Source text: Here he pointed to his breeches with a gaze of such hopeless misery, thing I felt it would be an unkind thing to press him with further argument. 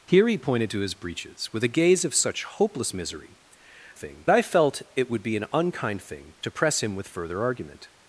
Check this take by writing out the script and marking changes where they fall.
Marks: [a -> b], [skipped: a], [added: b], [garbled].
Here he pointed to his breeches with a gaze of such hopeless misery, thing I felt it would be an unkind thing to press him with further argument.